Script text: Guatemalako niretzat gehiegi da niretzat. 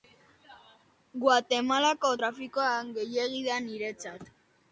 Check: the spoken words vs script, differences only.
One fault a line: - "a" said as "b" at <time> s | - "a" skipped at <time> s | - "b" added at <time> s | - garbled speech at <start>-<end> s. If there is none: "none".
- "niretzat" said as "trafikoa" at 2.2 s